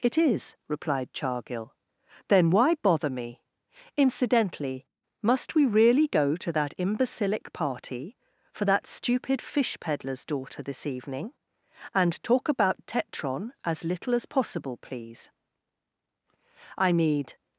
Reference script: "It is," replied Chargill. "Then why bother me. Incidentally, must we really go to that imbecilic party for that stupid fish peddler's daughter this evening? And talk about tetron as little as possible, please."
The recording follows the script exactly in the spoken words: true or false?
false